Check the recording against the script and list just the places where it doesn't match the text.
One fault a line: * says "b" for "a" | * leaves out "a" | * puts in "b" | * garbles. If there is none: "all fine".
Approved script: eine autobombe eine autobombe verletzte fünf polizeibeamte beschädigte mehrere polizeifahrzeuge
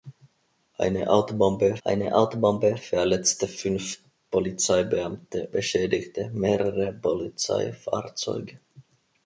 all fine